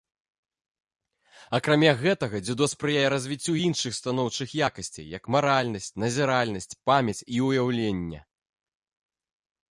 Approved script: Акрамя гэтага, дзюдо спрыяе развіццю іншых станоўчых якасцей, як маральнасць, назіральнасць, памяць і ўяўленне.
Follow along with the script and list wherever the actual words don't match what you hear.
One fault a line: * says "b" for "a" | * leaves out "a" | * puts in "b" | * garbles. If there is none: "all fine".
all fine